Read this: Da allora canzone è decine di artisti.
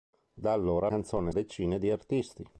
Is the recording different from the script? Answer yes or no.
no